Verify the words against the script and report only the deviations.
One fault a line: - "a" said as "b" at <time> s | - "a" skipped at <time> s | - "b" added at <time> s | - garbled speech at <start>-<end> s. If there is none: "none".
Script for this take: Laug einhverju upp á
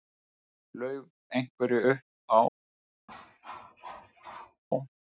none